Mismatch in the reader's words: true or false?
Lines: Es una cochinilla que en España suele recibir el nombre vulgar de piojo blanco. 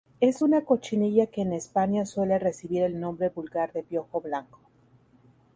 false